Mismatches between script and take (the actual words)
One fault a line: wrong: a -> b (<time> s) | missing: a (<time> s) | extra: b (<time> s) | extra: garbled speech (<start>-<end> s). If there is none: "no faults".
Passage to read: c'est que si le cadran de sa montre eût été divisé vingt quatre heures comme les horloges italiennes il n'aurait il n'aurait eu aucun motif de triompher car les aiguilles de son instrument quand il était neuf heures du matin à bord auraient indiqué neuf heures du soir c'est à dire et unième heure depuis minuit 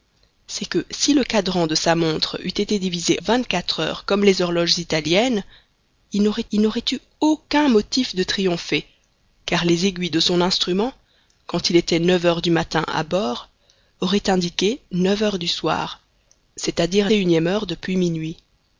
no faults